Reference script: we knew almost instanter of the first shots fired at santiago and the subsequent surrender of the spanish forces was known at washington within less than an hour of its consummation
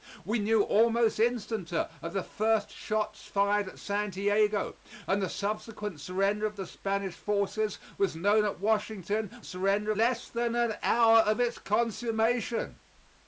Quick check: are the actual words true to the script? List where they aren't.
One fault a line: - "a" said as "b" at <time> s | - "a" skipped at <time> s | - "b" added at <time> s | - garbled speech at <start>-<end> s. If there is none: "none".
- "within" said as "surrender" at 9.4 s